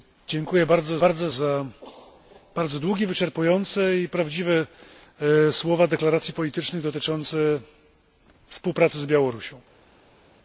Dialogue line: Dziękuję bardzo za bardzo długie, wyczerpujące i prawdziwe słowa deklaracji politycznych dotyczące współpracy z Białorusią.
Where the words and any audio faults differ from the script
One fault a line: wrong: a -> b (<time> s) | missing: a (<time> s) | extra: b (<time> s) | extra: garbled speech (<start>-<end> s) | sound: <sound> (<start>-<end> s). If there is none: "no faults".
extra: bardzo (1.0 s)